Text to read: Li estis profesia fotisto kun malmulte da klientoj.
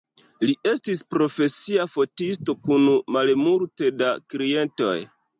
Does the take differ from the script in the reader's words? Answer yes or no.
no